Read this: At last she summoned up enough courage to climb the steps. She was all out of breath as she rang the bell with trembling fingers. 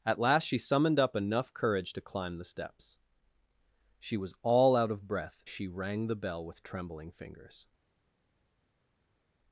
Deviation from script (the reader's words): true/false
true